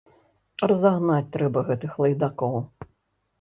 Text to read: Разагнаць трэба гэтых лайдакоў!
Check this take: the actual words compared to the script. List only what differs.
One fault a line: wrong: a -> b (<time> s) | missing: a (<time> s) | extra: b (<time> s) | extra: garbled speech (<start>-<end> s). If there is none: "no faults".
no faults